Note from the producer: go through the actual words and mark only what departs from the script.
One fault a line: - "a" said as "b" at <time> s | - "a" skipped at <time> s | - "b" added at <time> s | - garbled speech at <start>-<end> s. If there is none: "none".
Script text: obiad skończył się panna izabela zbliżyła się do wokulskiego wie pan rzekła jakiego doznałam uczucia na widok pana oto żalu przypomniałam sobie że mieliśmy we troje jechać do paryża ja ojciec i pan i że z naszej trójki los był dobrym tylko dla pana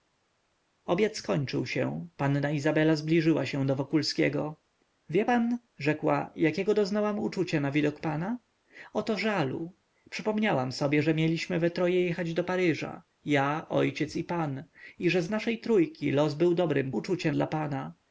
- "tylko" said as "uczucia" at 16.9 s